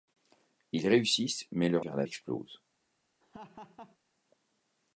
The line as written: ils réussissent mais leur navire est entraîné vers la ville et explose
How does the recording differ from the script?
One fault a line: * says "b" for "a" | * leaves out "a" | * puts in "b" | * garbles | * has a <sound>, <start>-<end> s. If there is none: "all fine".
* leaves out "navire est entraîné"
* leaves out "ville et"
* has a laugh, 3.2-4.0 s